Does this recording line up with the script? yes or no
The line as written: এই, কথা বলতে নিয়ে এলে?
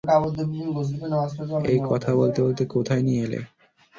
no